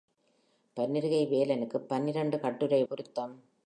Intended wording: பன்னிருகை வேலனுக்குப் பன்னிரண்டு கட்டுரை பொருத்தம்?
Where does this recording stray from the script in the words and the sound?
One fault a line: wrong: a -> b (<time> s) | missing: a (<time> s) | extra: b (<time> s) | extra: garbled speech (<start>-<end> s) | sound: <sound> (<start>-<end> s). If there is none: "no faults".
no faults